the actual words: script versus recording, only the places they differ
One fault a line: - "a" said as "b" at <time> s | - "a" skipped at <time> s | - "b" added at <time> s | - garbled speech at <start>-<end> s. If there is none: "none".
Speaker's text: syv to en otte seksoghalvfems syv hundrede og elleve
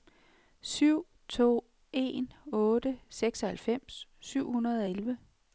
none